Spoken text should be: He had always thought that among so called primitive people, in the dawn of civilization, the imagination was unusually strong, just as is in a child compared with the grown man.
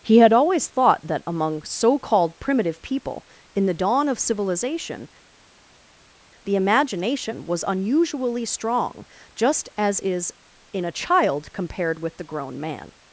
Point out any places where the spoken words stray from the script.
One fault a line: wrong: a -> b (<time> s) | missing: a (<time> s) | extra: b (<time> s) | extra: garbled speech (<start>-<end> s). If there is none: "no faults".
no faults